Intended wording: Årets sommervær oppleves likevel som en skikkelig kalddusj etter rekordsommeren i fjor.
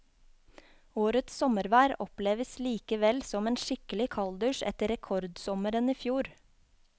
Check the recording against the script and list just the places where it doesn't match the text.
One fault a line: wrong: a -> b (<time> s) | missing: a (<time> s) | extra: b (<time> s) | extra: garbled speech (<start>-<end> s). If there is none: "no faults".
no faults